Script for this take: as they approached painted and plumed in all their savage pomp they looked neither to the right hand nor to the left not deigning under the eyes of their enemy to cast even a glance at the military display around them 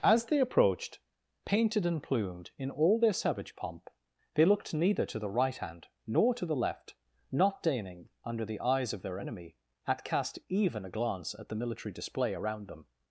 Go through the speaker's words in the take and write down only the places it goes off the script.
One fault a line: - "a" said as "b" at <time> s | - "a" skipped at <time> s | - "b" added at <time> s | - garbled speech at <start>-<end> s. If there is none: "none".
- "to" said as "at" at 9.8 s